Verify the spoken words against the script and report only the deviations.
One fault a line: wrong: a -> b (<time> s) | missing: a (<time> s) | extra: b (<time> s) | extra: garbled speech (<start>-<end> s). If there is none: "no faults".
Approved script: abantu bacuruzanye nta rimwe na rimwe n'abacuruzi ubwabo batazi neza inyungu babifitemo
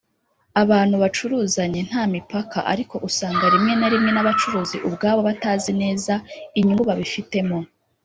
extra: mipaka ariko usanga (2.1 s)